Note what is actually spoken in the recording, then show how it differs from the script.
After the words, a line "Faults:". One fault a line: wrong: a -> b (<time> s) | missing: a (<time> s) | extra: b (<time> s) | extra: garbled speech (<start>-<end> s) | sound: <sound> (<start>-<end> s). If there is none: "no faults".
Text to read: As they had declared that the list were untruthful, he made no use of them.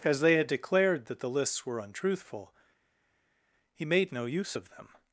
As they had declared that the lists were untruthful, he made no use of them.
Faults:
wrong: list -> lists (1.3 s)